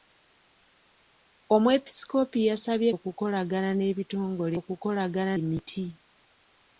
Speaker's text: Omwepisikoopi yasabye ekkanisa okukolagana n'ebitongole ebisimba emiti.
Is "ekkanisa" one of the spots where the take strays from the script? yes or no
yes